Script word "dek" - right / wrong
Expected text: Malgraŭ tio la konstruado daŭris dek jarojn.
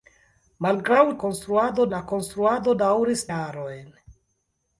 wrong